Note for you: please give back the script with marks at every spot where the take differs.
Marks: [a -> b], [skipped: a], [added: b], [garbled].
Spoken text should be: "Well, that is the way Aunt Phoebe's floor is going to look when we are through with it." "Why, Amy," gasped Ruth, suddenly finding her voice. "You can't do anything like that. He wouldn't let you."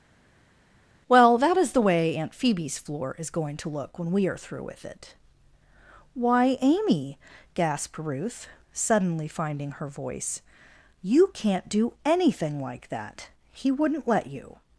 "Well, that is the way Aunt Phoebe's floor is going to look when we are through with it." "Why, Amy," gasped Ruth, suddenly finding her voice. "You can't do anything like that. He wouldn't let you."